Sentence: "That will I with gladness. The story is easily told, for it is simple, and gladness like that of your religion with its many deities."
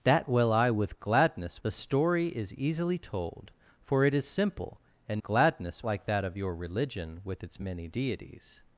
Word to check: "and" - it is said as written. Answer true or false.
true